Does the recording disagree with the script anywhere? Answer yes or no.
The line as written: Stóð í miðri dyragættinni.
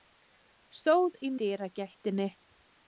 yes